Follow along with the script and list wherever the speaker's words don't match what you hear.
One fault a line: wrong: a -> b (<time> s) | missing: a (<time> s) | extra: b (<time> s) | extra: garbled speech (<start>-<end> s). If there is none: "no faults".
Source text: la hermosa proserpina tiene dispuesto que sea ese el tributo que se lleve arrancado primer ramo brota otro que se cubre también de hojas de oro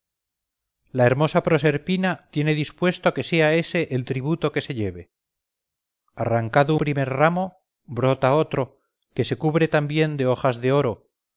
no faults